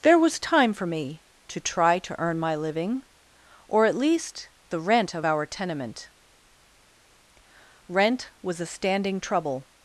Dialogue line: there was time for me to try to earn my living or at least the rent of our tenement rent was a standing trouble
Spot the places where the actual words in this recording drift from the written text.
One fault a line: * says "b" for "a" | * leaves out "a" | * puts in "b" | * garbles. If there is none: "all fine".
all fine